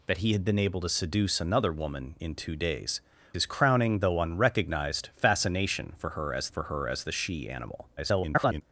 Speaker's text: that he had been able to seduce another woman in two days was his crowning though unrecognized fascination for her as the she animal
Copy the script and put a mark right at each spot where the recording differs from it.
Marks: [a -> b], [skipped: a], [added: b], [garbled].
that he had been able to seduce another woman in two days [skipped: was] his crowning though unrecognized fascination for her as [added: for her as] the she animal [garbled]